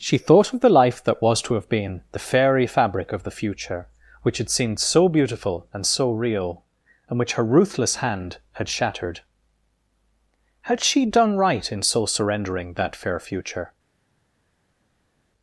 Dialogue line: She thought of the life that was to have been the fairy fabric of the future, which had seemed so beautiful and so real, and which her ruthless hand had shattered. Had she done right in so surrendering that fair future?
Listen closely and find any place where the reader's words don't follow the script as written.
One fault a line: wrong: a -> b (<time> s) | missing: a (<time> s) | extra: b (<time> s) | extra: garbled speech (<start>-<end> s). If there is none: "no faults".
no faults